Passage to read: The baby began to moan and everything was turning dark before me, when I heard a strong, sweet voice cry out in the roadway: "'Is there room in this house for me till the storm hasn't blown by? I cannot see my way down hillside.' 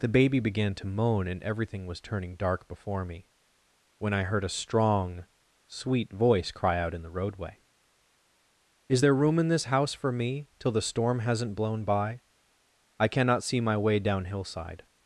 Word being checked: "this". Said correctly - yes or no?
yes